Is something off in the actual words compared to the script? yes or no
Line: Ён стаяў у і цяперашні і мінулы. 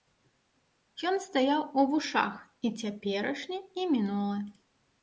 yes